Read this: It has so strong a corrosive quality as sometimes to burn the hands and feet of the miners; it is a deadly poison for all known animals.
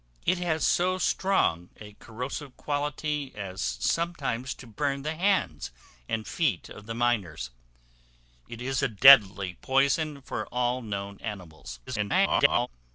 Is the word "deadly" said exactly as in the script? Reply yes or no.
yes